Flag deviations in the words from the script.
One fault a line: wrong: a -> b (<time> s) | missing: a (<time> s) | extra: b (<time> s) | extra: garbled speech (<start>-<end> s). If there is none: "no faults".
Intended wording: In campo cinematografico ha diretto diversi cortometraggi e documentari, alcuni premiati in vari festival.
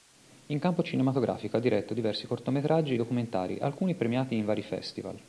missing: e (3.0 s)